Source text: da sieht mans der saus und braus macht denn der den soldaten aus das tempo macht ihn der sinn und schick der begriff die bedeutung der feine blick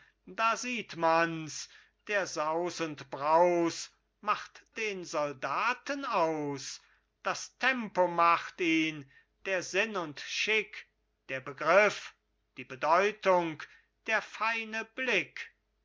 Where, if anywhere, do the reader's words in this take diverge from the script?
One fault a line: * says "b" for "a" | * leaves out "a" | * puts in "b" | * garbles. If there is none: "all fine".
* leaves out "denn der"